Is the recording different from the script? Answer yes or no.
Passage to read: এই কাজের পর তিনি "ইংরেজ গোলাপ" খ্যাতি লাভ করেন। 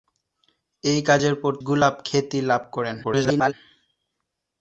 yes